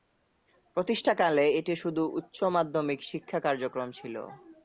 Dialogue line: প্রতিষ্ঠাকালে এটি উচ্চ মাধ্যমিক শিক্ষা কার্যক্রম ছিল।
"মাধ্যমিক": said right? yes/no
yes